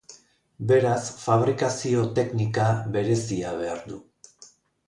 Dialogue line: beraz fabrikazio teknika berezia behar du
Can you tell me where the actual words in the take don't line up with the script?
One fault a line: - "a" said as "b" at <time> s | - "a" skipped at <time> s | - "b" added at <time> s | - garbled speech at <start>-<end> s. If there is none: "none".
none